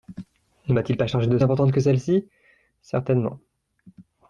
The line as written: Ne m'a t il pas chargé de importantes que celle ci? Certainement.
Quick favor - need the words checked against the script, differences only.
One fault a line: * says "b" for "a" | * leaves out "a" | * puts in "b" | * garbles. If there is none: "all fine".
all fine